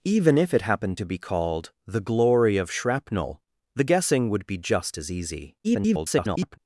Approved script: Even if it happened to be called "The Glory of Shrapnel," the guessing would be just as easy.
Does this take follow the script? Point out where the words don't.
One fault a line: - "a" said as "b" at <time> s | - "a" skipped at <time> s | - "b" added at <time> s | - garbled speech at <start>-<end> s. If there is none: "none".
- garbled speech at 5.6-6.6 s